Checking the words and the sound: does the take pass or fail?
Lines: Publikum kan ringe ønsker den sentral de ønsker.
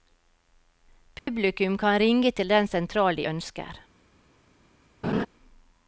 fail